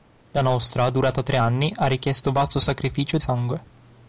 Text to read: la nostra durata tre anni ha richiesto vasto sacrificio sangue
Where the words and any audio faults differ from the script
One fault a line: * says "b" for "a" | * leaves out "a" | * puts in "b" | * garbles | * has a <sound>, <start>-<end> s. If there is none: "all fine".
all fine